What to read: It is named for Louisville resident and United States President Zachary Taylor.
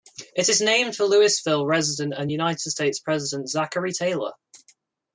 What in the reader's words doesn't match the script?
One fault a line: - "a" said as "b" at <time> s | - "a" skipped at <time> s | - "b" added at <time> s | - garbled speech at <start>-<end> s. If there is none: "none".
none